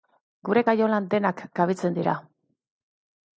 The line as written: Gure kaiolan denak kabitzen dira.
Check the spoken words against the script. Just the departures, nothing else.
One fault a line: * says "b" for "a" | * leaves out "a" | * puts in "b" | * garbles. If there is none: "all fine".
all fine